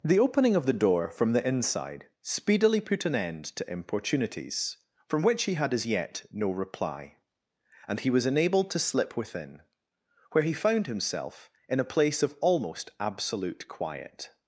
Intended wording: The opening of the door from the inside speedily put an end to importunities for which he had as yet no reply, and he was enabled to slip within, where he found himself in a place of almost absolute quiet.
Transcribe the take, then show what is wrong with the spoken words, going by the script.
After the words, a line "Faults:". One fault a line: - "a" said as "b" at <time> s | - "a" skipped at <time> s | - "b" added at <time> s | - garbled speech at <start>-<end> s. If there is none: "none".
The opening of the door from the inside speedily put an end to importunities from which he had as yet no reply, and he was enabled to slip within, where he found himself in a place of almost absolute quiet.
Faults:
- "for" said as "from" at 5.1 s